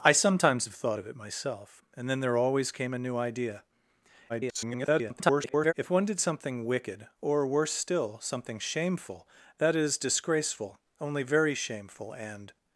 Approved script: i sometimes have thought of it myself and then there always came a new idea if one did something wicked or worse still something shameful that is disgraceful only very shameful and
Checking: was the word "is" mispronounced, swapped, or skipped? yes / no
no